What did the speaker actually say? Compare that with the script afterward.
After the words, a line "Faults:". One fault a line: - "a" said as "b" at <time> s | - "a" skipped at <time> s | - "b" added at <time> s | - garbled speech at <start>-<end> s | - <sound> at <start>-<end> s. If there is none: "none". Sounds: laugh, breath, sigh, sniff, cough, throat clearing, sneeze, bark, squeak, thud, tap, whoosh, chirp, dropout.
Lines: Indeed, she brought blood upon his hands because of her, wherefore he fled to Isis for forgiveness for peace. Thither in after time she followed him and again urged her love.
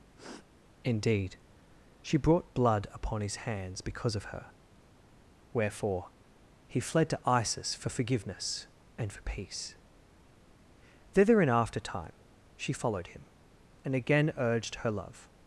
Indeed, she brought blood upon his hands because of her, wherefore he fled to Isis for forgiveness and for peace. Thither in after time she followed him and again urged her love.
Faults:
- sniff at 0.2-0.5 s
- "and" added at 9.0 s